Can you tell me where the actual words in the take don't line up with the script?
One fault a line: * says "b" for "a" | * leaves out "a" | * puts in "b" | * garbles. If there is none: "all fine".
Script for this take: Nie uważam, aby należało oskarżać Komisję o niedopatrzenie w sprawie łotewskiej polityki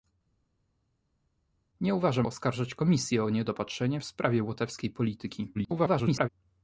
* leaves out "aby należało"
* garbles